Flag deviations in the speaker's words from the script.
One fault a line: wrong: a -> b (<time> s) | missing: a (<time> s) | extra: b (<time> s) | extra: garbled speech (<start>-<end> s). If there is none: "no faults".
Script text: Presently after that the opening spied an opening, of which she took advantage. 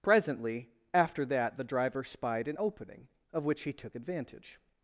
wrong: opening -> driver (1.6 s)
wrong: she -> he (3.6 s)